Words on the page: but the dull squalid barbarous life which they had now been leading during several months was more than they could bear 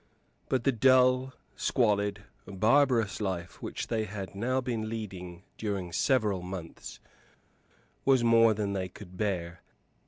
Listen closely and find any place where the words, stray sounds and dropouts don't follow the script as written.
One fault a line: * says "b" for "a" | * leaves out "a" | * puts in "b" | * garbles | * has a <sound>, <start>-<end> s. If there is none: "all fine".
all fine